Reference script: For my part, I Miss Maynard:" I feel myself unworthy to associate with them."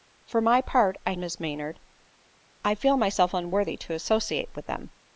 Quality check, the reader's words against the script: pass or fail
pass